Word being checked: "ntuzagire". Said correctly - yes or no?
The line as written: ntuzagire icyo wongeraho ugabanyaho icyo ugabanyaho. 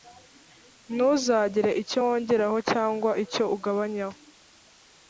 yes